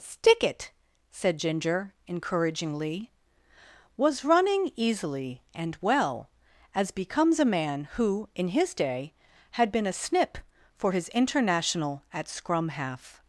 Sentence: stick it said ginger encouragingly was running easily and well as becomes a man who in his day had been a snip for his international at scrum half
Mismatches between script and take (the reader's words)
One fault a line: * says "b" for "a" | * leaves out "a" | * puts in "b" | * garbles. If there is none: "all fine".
all fine